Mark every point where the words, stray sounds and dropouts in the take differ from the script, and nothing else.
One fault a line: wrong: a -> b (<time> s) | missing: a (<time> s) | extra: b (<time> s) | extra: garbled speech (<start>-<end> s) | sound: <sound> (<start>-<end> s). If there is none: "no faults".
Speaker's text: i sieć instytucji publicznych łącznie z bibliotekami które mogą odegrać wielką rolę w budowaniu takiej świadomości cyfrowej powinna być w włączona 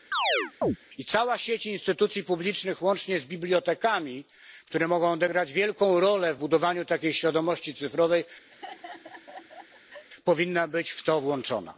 sound: chirp (0.1-0.8 s)
extra: cała (1.0 s)
sound: laugh (8.5-10.1 s)
extra: to (11.0 s)